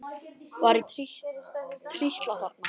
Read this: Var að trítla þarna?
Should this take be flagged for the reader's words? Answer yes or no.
no